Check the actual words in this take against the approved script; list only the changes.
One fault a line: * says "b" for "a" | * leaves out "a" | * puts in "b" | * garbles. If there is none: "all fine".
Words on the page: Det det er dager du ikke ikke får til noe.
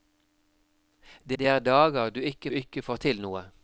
all fine